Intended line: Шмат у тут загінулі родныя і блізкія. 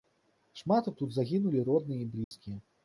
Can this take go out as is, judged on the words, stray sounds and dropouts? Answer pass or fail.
fail